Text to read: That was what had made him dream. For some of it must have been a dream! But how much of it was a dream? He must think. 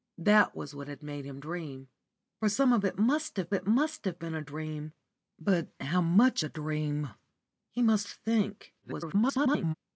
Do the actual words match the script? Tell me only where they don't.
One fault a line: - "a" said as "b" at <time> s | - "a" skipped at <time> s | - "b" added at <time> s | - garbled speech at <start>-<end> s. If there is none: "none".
- "it must have" added at 3.5 s
- "of it was" skipped at 6.4 s
- garbled speech at 8.8-9.7 s